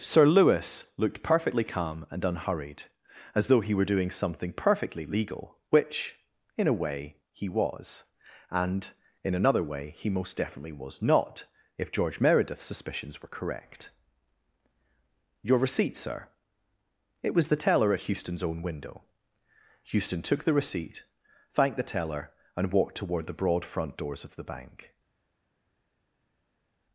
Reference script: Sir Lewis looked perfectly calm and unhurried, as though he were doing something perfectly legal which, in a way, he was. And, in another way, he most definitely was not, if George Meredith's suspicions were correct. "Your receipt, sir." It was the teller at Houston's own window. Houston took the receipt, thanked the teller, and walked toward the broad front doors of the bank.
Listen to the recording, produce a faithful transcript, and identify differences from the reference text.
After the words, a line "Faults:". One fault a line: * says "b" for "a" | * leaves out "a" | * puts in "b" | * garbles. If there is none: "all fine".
Sir Lewis looked perfectly calm and unhurried, as though he were doing something perfectly legal which, in a way, he was. And, in another way, he most definitely was not, if George Meredith's suspicions were correct. "Your receipt, sir." It was the teller at Houston's own window. Houston took the receipt, thanked the teller, and walked toward the broad front doors of the bank.
Faults:
all fine